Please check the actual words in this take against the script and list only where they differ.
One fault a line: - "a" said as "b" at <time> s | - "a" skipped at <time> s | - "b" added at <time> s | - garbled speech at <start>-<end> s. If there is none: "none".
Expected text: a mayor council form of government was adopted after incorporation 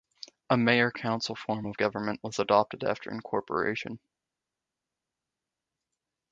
none